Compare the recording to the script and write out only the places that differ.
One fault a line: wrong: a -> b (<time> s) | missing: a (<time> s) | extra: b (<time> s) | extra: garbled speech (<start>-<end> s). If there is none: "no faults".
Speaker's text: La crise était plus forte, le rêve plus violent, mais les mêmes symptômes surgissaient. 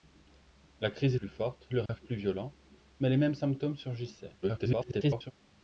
missing: était (1.1 s)
extra: garbled speech (4.4-5.3 s)